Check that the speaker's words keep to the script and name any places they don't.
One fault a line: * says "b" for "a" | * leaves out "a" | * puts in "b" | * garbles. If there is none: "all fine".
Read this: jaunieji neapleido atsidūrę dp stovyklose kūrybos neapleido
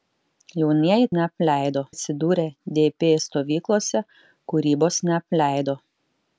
all fine